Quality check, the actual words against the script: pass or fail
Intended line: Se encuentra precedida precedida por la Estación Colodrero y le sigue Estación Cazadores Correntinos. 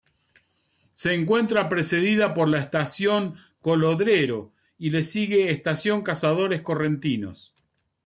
fail